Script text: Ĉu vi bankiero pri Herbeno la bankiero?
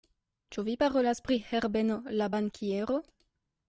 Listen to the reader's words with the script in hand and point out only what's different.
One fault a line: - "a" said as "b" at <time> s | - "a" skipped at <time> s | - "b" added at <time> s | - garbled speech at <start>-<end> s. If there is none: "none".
- "bankiero" said as "parolas" at 0.8 s